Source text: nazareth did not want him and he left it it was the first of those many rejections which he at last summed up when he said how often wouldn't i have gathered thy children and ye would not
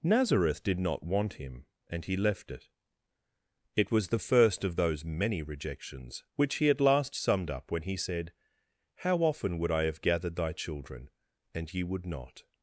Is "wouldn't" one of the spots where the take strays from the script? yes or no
yes